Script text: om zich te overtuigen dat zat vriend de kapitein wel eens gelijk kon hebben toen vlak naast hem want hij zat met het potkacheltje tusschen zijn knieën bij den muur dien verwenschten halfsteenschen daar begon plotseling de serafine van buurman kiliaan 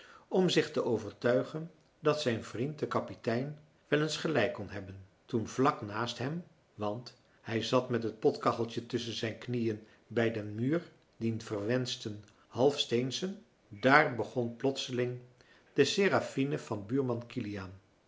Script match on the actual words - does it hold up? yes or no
no